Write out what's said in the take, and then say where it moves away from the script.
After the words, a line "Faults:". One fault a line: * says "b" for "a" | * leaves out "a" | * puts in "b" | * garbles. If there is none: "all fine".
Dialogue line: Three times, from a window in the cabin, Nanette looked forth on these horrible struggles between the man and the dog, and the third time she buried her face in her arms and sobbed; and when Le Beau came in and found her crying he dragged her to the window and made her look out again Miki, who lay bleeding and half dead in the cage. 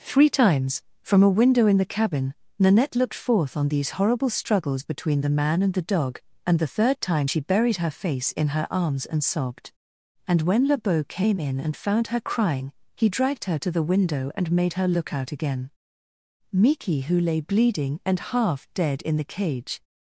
Three times, from a window in the cabin, Nanette looked forth on these horrible struggles between the man and the dog, and the third time she buried her face in her arms and sobbed; and when Le Beau came in and found her crying he dragged her to the window and made her look out again Miki, who lay bleeding and half dead in the cage.
Faults:
all fine